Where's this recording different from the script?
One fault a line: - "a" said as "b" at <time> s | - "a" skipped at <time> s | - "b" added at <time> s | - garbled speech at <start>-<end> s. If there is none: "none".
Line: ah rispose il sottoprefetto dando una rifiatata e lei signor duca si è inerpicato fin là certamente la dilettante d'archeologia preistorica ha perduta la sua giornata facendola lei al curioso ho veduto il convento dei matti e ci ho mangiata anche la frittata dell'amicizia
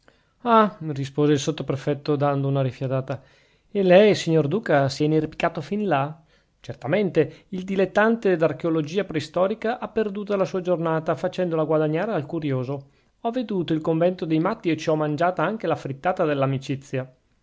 - "la" said as "il" at 7.5 s
- "lei" said as "guadagnare" at 11.6 s